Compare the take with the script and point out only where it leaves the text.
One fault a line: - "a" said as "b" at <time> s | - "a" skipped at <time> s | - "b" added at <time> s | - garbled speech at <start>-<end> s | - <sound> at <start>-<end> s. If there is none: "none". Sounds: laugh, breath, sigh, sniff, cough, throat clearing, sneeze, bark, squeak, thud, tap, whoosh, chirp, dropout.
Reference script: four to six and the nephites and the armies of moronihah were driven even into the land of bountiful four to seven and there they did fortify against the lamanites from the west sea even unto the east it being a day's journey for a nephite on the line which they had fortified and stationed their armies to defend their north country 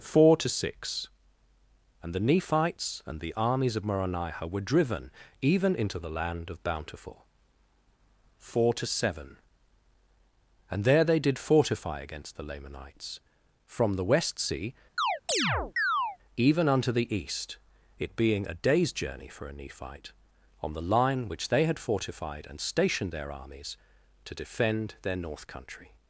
- chirp at 15.0-16.2 s